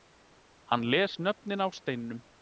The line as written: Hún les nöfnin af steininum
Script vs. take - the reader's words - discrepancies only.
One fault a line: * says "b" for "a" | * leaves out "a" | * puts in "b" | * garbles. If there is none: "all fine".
* says "Hann" for "Hún"